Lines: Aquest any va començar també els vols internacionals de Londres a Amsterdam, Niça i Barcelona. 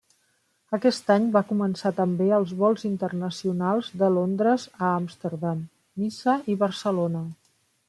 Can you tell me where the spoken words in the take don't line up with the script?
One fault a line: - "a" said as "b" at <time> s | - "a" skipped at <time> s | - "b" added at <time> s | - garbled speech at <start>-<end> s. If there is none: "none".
none